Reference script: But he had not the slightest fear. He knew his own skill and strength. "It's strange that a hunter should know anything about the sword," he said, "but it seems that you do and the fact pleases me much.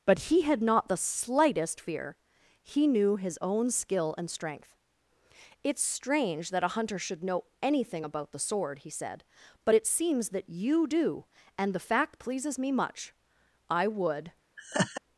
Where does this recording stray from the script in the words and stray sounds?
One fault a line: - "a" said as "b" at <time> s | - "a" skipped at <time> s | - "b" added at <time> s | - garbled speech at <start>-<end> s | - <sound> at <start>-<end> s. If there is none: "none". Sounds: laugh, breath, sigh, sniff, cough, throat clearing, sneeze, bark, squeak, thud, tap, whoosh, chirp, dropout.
- "I would" added at 13.7 s
- laugh at 14.6-15.0 s